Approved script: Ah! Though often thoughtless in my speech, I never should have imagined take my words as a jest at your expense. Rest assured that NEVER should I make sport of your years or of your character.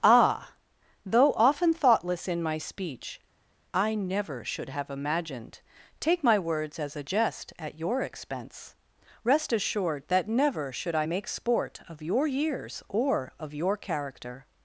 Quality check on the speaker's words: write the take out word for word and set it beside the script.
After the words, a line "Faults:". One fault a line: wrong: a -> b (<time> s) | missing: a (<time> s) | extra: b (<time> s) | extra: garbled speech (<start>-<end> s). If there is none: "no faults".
Ah! Though often thoughtless in my speech, I never should have imagined take my words as a jest at your expense. Rest assured that NEVER should I make sport of your years or of your character.
Faults:
no faults